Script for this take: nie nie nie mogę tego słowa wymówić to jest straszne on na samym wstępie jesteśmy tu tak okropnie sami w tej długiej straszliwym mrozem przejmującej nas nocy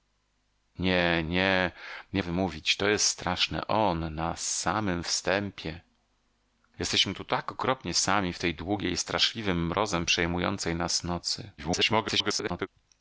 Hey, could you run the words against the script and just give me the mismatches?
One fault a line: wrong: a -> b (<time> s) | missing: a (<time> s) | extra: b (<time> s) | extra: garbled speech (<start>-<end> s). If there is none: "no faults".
missing: mogę tego słowa (2.2 s)
extra: garbled speech (11.6-12.7 s)